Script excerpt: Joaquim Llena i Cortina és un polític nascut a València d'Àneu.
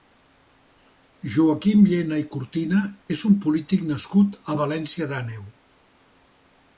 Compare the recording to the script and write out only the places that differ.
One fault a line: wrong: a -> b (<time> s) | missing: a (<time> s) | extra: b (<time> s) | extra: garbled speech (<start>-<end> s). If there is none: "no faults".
no faults